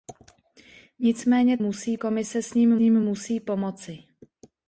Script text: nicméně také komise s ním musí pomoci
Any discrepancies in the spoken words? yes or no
yes